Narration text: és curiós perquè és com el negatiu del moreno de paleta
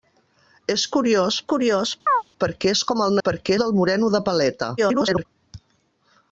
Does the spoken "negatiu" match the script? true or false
false